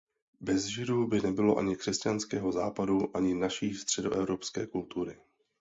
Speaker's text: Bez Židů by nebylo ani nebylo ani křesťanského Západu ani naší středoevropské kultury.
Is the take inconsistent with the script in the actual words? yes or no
yes